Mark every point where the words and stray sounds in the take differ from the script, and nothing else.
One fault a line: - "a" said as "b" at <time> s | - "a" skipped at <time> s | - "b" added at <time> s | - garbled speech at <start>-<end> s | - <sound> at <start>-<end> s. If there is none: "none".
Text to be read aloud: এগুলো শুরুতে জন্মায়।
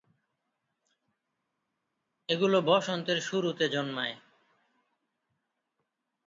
- "বসন্তের" added at 2.6 s